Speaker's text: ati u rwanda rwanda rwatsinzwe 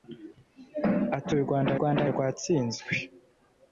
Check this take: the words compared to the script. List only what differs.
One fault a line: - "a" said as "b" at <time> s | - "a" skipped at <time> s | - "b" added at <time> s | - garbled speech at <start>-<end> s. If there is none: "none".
none